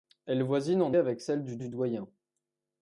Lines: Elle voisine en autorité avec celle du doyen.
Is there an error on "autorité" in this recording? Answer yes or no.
yes